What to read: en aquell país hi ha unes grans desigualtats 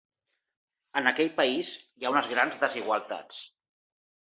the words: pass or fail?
pass